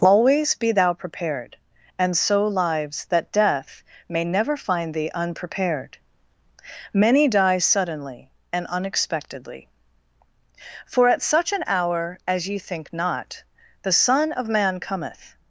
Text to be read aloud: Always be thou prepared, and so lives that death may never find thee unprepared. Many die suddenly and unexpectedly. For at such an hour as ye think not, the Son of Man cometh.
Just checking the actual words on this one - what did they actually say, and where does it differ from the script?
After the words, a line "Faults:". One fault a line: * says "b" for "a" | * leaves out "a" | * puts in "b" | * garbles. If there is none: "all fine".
Always be thou prepared, and so lives that death may never find thee unprepared. Many die suddenly and unexpectedly. For at such an hour as ye think not, the Son of Man cometh.
Faults:
all fine